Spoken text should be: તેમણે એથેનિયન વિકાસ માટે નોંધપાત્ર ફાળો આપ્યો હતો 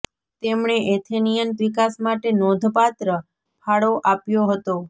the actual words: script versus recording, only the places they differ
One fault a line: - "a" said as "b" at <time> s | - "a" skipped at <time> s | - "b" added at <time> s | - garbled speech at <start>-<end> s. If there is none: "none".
none